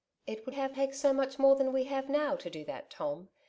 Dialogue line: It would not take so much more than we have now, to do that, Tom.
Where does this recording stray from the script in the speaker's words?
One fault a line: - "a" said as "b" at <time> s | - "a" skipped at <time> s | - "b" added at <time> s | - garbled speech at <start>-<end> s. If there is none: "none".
- "not" said as "have" at 0.5 s